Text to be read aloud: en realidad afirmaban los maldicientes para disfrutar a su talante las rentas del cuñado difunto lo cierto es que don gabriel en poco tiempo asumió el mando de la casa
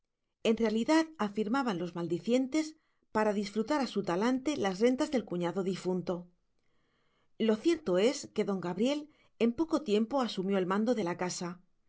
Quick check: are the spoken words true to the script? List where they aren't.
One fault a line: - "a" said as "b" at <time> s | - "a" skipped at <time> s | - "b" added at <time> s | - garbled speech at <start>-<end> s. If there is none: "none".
none